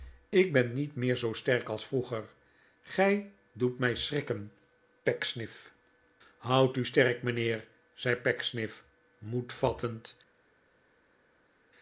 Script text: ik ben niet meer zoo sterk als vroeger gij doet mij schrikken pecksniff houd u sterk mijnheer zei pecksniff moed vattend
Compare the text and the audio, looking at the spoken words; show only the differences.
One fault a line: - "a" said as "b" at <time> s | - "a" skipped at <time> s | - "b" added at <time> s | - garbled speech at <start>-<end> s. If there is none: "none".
none